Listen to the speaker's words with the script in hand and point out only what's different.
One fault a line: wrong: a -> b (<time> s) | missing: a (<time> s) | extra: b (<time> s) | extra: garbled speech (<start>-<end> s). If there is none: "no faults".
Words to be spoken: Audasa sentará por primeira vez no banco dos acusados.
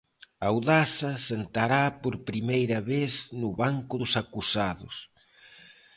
no faults